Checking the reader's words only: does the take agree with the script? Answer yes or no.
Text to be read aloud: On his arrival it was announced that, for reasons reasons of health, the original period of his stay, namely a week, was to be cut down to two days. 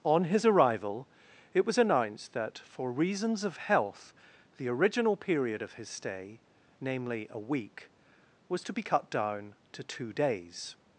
no